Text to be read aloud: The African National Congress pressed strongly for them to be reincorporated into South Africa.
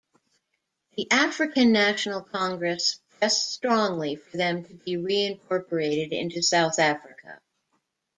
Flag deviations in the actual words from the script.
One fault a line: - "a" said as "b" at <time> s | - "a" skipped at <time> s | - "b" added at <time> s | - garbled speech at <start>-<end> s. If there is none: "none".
none